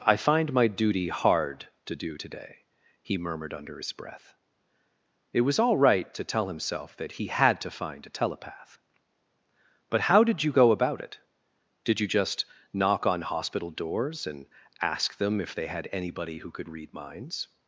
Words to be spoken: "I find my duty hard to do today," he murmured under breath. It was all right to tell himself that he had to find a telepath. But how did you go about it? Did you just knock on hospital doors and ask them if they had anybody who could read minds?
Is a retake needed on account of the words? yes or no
yes